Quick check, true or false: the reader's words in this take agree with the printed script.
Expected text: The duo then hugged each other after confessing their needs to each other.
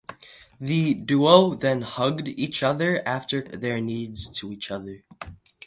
false